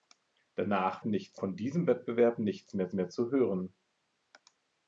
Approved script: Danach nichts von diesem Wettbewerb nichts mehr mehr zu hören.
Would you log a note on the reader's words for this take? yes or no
no